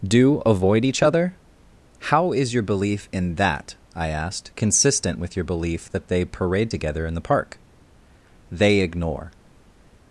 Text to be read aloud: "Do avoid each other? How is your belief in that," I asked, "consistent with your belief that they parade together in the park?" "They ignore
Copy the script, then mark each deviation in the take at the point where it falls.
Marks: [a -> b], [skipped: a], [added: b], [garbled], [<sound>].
"Do avoid each other? How is your belief in that," I asked, "consistent with your belief that they parade together in the park?" "They ignore